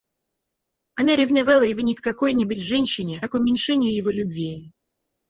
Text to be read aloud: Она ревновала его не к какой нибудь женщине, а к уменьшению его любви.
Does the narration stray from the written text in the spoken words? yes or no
no